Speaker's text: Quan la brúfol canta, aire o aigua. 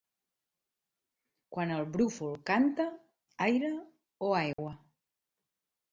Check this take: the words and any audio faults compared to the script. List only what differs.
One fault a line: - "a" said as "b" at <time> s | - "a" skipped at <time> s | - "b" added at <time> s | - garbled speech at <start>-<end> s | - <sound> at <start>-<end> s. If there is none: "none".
- "la" said as "el" at 1.8 s
- dropout at 4.5-4.6 s